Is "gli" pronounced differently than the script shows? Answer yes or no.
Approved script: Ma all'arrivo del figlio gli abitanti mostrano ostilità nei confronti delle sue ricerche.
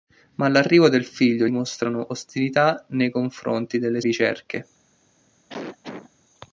yes